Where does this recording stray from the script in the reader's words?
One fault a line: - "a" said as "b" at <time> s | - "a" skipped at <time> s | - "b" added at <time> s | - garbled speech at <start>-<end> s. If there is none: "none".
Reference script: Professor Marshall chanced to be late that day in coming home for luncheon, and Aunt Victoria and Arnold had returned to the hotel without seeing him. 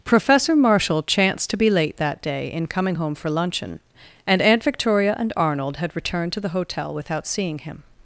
none